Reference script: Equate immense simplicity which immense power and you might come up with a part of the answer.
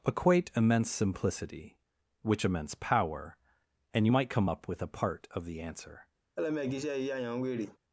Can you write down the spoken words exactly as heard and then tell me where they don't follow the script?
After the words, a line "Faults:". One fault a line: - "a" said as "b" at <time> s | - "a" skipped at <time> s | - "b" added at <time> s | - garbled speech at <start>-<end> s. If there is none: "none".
Equate immense simplicity which immense power and you might come up with a part of the answer.
Faults:
none